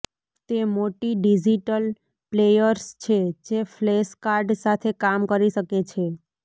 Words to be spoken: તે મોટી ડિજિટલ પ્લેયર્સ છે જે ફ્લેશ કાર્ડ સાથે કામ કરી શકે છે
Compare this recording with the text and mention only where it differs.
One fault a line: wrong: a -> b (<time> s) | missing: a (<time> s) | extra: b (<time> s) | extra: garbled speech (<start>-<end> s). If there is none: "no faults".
no faults